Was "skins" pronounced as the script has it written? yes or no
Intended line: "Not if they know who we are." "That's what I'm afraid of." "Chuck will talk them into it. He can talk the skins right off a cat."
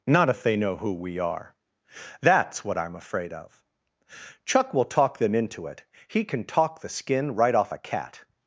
no